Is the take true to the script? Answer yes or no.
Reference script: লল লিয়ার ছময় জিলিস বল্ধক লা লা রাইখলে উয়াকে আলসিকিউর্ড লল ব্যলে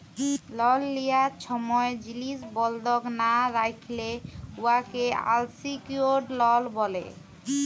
no